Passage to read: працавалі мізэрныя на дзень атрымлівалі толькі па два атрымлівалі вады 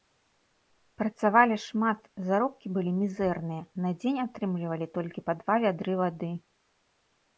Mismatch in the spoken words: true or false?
true